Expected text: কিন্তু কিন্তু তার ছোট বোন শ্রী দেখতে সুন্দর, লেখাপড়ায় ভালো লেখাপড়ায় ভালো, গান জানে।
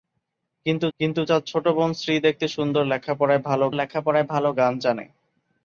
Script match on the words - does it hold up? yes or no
yes